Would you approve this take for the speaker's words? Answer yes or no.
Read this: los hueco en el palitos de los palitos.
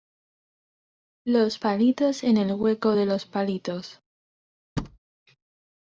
no